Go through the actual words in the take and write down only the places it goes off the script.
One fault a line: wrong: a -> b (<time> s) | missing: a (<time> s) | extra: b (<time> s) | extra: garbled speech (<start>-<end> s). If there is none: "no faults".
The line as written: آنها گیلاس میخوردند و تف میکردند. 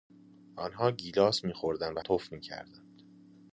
no faults